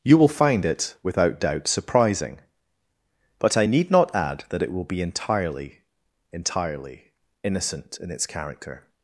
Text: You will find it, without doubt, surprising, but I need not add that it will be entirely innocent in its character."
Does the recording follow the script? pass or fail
fail